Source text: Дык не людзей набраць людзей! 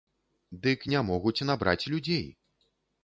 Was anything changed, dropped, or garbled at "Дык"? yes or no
no